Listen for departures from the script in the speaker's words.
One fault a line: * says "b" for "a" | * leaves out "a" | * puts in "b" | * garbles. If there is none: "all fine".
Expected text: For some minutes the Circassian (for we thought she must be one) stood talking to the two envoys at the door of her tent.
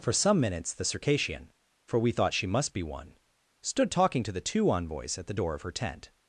all fine